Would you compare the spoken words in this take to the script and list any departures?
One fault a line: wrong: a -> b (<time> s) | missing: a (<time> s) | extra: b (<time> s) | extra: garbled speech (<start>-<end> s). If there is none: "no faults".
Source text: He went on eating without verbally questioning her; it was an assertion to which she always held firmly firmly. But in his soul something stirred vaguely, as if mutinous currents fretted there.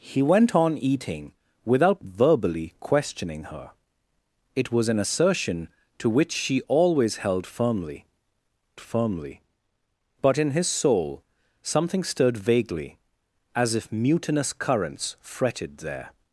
no faults